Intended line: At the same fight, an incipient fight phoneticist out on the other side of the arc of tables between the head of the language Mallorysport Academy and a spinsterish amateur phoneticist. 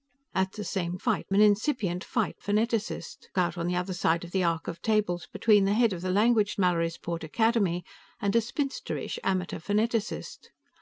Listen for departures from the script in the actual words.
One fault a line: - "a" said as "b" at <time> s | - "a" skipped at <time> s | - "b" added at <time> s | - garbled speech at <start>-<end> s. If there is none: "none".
none